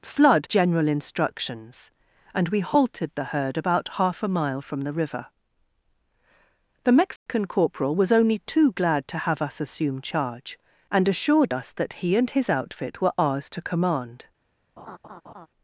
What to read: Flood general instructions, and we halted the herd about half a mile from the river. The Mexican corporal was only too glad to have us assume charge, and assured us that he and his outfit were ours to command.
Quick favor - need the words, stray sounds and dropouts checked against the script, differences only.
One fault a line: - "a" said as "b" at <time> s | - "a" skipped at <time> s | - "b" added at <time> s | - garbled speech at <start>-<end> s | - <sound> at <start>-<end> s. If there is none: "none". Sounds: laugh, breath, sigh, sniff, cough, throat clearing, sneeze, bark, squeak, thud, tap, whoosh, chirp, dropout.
- dropout at 7.2-7.3 s
- laugh at 14.8-15.5 s